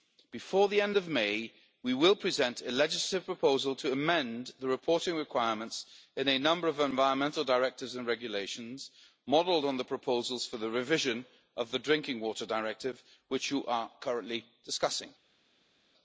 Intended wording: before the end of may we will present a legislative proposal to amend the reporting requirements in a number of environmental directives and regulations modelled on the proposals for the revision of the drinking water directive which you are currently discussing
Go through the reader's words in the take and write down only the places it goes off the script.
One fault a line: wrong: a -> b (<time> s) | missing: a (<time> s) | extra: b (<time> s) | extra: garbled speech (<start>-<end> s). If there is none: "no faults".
no faults